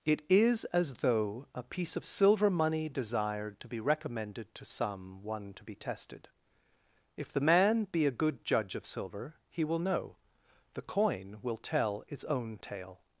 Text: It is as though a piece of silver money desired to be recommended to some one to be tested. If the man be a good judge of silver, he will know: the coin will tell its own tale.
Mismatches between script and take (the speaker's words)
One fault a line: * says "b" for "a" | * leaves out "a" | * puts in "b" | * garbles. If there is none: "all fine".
all fine